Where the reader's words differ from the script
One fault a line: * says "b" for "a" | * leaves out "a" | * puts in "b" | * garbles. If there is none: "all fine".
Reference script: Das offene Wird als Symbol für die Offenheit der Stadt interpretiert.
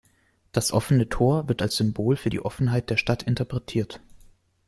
* puts in "Tor"